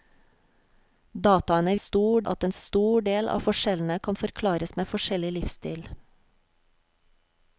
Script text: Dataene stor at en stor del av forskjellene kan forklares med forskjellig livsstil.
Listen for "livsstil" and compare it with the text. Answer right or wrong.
right